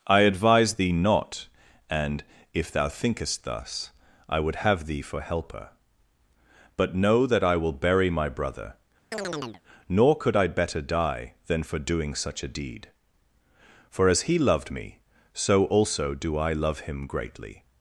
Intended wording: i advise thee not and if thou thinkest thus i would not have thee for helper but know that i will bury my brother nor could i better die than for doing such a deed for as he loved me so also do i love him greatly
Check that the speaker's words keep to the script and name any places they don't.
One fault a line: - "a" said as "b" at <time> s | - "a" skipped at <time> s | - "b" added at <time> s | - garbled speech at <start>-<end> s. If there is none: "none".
- "not" skipped at 4.6 s